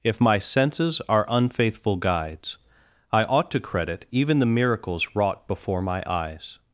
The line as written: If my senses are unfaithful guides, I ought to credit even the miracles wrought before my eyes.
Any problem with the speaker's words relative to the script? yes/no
no